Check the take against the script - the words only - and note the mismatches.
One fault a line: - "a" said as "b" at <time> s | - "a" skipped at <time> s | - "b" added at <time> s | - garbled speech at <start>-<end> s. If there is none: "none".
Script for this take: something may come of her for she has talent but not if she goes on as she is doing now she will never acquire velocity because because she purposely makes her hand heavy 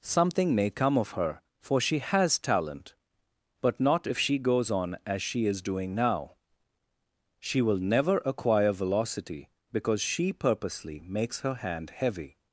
- "because" skipped at 10.0 s